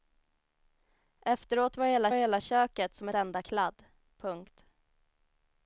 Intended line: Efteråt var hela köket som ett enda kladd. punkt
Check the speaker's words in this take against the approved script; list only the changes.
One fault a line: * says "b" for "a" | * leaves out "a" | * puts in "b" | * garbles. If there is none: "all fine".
* puts in "hela"
* leaves out "ett"